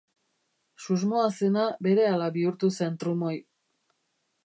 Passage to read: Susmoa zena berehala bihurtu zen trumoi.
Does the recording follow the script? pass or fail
pass